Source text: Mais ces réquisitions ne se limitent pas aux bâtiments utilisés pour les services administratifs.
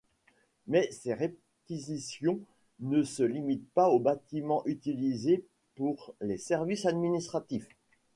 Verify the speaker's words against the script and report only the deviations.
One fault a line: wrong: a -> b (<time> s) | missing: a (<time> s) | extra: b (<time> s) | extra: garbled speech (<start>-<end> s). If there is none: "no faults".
no faults